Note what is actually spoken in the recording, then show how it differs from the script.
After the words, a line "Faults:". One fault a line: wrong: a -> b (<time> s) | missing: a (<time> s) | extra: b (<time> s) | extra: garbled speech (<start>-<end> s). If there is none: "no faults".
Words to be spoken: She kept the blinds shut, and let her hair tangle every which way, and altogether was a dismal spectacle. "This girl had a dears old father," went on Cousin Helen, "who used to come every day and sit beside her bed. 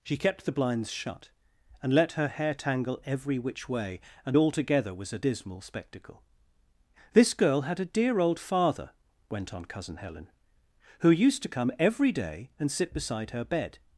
She kept the blinds shut, and let her hair tangle every which way, and altogether was a dismal spectacle. "This girl had a dear old father," went on Cousin Helen, "who used to come every day and sit beside her bed.
Faults:
wrong: dears -> dear (7.9 s)